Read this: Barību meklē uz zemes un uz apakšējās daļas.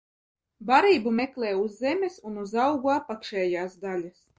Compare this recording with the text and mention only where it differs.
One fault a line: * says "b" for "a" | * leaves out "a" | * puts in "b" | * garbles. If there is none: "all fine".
* puts in "augu"